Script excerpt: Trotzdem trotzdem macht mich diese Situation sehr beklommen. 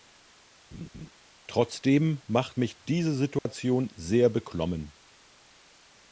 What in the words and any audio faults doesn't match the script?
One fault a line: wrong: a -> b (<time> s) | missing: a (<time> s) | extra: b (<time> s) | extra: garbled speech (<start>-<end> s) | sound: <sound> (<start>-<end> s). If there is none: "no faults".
sound: laugh (0.7-1.1 s)
missing: trotzdem (2.2 s)
sound: dropout (3.4-3.5 s)